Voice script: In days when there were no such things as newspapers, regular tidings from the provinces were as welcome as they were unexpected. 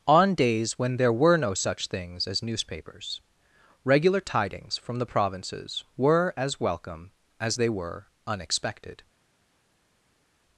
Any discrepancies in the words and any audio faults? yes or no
yes